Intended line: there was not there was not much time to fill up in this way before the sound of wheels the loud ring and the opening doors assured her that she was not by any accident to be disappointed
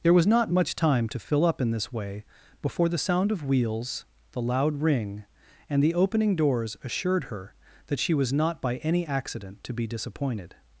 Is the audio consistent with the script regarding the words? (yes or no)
no